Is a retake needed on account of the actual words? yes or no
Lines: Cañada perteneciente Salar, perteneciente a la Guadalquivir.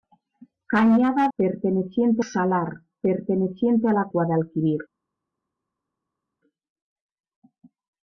no